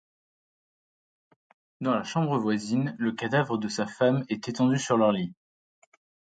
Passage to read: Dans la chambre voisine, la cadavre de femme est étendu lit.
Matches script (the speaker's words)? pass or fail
fail